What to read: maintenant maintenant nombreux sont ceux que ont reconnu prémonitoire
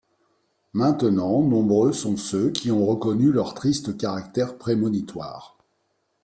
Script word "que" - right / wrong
wrong